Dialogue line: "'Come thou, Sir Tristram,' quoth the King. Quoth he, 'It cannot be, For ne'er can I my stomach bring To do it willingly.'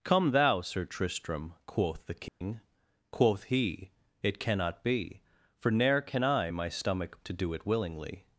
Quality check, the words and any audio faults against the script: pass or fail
fail